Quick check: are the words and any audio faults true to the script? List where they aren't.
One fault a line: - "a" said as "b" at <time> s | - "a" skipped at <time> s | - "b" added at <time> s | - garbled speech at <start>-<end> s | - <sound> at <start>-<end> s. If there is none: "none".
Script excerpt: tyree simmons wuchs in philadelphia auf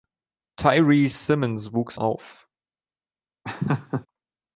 - "in philadelphia" skipped at 2.0 s
- laugh at 3.4-4.1 s